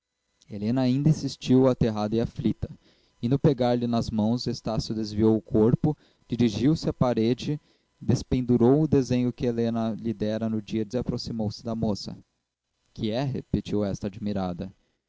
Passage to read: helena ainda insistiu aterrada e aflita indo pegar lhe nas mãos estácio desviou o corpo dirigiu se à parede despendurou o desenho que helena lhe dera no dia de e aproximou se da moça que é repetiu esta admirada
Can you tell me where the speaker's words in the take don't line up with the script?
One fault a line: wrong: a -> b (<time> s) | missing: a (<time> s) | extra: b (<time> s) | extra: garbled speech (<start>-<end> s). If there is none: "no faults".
no faults